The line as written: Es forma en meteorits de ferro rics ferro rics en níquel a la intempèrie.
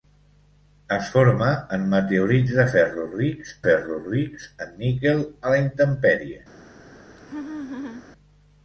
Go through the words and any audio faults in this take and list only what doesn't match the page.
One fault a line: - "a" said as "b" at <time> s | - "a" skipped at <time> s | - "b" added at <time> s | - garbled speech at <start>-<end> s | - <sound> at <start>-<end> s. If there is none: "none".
- laugh at 7.2-8.1 s